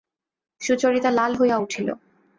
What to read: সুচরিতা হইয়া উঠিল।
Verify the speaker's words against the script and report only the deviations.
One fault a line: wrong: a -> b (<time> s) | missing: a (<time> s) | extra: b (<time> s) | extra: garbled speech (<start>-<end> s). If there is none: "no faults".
extra: লাল (1.1 s)